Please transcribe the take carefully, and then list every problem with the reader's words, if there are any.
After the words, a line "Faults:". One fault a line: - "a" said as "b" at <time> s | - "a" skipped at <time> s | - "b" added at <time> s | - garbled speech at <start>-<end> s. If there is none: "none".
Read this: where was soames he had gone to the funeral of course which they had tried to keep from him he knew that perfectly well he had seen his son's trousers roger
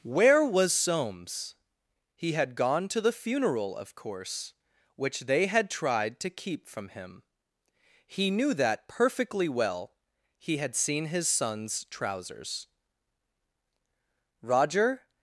where was soames he had gone to the funeral of course which they had tried to keep from him he knew that perfectly well he had seen his son's trousers roger
Faults:
none